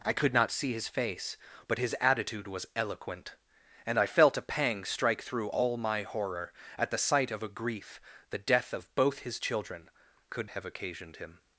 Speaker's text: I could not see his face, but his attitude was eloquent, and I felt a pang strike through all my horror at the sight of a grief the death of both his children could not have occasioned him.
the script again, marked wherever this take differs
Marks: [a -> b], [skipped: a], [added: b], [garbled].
I could not see his face, but his attitude was eloquent, and I felt a pang strike through all my horror at the sight of a grief the death of both his children could [skipped: not] have occasioned him.